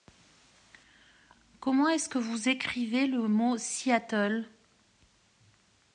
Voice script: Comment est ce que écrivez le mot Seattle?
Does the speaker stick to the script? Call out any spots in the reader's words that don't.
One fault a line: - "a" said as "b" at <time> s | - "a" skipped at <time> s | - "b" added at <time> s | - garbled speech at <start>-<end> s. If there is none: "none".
- "vous" added at 2.2 s